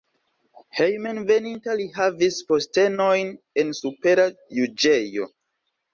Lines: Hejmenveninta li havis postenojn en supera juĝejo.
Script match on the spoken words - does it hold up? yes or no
yes